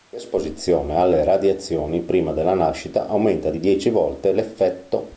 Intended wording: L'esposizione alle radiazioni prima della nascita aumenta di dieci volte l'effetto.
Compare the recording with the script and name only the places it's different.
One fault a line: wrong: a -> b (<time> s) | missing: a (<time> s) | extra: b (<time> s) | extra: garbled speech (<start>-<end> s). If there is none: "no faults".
no faults